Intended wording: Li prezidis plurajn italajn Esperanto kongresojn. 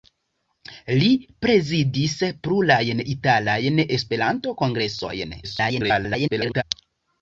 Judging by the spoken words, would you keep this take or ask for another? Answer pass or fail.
fail